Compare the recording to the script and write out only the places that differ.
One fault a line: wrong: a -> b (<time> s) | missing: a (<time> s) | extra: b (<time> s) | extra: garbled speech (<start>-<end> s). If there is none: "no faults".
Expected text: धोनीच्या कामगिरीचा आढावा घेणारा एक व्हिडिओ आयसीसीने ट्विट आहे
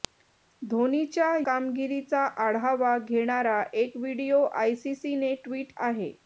no faults